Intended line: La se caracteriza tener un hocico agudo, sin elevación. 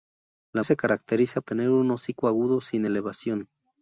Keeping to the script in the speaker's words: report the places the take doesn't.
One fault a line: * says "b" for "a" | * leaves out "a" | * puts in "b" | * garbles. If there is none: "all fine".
all fine